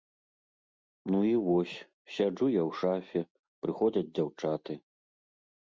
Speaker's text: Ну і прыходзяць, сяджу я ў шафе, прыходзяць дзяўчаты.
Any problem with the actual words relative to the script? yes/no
yes